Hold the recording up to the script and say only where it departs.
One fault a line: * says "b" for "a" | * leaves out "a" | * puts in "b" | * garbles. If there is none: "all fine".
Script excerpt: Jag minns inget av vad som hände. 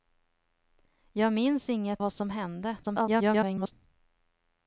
* leaves out "av"
* garbles